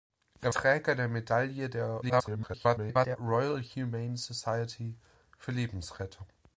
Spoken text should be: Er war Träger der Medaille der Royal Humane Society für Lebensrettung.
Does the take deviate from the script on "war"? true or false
true